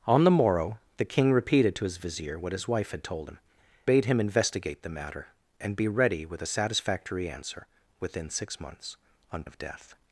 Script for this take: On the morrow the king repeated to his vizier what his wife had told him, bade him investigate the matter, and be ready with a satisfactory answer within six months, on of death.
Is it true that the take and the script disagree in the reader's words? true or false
false